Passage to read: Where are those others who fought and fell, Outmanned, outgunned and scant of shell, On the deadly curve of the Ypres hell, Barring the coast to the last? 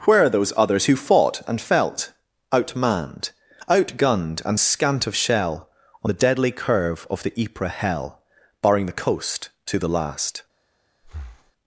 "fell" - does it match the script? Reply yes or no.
no